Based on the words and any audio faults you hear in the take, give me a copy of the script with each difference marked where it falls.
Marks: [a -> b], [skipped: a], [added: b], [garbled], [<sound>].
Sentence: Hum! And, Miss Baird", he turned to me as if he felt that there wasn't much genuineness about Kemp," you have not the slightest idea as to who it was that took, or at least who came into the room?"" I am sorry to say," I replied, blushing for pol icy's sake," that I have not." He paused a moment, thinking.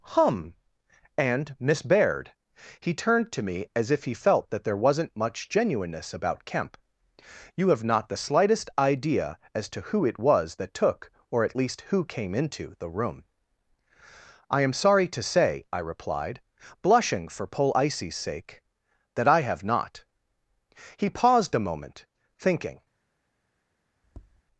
Hum! And, Miss Baird", he turned to me as if he felt that there wasn't much genuineness about Kemp," you have not the slightest idea as to who it was that took, or at least who came into the room?"" I am sorry to say," I replied, blushing for pol icy's sake," that I have not." He paused a moment, thinking. [tap]